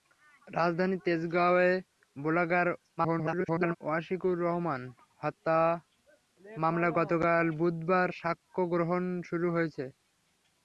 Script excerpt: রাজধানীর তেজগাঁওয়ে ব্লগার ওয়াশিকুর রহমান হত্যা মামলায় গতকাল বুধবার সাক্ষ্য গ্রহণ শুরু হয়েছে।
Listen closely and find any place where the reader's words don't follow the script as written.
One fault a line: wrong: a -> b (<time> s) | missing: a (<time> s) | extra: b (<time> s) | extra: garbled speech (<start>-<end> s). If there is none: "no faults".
extra: garbled speech (3.0-3.8 s)